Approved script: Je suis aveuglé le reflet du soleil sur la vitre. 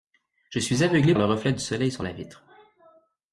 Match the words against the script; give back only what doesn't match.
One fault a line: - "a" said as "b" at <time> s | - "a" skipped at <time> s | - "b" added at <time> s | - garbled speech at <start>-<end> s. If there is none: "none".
none